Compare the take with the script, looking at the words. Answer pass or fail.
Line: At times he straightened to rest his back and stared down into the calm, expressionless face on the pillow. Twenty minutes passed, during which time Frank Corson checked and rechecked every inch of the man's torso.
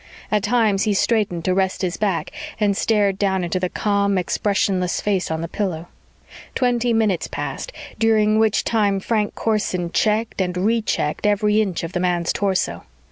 pass